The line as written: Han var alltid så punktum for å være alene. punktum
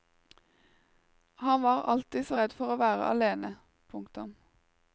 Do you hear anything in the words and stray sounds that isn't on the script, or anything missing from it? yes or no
yes